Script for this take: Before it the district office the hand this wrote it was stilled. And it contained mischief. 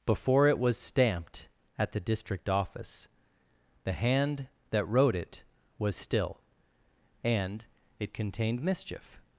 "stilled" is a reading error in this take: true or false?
true